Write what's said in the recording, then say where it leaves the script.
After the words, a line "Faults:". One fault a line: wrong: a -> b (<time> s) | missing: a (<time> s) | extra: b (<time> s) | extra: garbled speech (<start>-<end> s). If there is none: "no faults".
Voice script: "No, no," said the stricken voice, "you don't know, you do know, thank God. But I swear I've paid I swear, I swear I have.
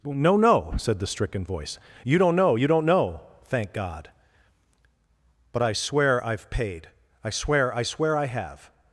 "No, no," said the stricken voice, "you don't know, you don't know, thank God. But I swear I've paid I swear, I swear I have.
Faults:
wrong: do -> don't (2.7 s)